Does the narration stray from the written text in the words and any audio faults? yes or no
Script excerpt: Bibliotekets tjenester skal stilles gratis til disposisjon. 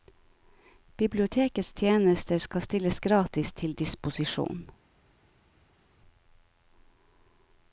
no